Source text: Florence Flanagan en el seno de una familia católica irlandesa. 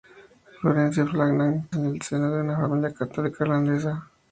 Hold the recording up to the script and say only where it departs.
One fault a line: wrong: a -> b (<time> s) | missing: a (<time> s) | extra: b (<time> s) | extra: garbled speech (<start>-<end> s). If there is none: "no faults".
no faults